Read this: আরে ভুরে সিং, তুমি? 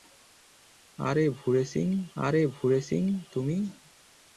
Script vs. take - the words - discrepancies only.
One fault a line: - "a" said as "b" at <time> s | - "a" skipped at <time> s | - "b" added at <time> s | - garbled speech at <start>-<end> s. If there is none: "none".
- "আরে ভুরে সিং" added at 2.2 s